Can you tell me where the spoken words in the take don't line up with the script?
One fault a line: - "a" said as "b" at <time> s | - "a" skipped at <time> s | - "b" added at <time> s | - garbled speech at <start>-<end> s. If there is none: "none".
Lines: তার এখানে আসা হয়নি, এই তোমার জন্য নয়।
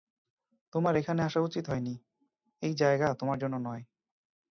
- "তার" said as "তোমার" at 0.7 s
- "উচিত" added at 1.4 s
- "জায়গা" added at 2.7 s